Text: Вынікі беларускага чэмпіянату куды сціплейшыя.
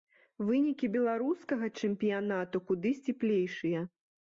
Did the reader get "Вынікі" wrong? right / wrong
right